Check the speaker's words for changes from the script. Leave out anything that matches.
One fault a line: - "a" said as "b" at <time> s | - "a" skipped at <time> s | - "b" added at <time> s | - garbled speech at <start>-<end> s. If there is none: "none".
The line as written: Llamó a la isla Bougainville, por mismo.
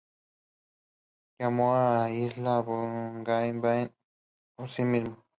- "sí" added at 4.7 s